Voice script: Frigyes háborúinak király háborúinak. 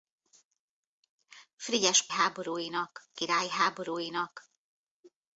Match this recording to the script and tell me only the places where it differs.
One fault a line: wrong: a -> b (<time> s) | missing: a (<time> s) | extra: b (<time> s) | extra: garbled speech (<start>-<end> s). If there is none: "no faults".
no faults